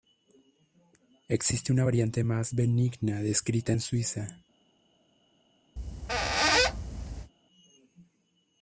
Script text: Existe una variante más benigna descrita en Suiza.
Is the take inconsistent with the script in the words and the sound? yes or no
yes